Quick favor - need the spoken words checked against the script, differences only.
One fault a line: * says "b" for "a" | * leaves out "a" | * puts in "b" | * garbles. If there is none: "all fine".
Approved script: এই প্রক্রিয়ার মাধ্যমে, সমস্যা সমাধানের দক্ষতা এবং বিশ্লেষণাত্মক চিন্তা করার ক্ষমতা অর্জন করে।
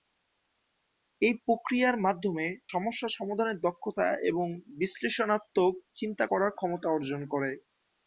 all fine